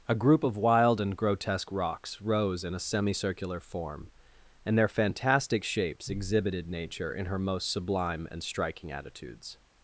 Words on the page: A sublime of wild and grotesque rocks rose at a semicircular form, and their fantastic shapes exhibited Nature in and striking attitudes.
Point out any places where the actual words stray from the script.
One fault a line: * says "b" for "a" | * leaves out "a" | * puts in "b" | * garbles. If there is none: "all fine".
* says "group" for "sublime"
* says "in" for "at"
* puts in "her most sublime"